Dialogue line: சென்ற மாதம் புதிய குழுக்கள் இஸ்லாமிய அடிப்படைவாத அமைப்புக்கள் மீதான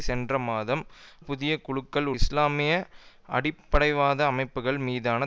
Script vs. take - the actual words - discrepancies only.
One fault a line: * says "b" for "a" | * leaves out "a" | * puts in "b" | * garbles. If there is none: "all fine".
all fine